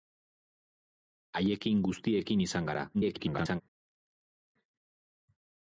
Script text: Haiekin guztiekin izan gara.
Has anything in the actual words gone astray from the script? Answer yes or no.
yes